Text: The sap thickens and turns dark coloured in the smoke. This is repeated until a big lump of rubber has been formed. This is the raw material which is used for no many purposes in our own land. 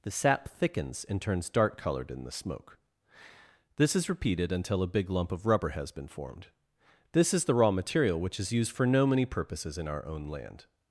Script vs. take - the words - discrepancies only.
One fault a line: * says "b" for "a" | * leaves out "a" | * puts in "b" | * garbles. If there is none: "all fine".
all fine